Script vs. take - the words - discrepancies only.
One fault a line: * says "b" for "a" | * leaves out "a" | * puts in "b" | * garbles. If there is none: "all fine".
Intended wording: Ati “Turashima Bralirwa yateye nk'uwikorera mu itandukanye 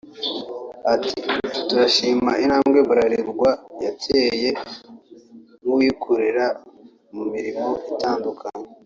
* puts in "intambwe"
* puts in "mirimo"